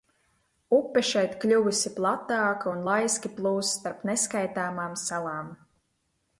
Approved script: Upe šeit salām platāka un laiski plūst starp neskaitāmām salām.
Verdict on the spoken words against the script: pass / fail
fail